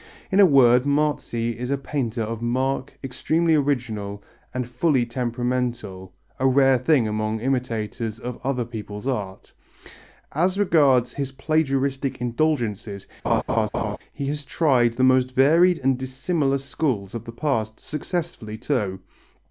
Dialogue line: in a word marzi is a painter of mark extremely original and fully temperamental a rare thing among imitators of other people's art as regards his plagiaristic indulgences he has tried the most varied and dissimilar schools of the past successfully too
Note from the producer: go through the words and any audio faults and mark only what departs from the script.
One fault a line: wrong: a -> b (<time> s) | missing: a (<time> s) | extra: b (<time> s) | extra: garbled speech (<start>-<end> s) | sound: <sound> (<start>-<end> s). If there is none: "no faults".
sound: laugh (13.2-14.0 s)